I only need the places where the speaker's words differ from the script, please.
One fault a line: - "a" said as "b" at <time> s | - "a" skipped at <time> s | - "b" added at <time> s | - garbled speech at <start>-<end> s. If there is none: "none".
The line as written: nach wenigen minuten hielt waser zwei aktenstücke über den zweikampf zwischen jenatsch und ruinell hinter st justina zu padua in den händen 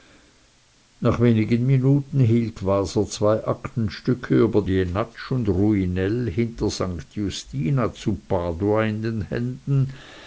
- "den zweikampf zwischen" skipped at 4.6 s